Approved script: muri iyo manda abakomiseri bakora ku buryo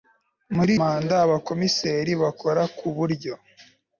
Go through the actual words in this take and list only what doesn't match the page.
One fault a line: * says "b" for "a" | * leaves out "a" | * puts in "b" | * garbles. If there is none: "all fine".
* leaves out "iyo"